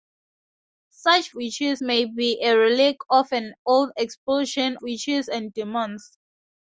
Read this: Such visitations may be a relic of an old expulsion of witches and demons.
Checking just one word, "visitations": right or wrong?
wrong